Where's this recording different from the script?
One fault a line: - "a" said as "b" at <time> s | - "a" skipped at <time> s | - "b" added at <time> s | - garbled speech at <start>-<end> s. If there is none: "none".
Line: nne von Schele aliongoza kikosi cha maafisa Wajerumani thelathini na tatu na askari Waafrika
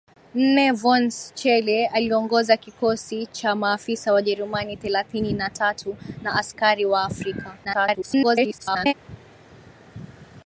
- garbled speech at 7.6-8.9 s